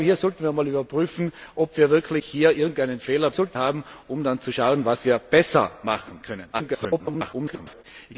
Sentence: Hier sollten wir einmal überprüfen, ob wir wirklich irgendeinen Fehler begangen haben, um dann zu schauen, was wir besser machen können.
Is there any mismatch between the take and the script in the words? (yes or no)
yes